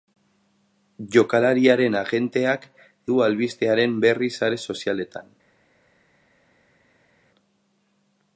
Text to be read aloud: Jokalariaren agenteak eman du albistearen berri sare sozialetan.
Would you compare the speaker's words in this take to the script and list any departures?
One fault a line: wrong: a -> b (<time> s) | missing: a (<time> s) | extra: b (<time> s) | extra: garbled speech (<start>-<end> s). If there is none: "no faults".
missing: eman (2.6 s)